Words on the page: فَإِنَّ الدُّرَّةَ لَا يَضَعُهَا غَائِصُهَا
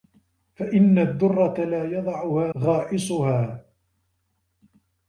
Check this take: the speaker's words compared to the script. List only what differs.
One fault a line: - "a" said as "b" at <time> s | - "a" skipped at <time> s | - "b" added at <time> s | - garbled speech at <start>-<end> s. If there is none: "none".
none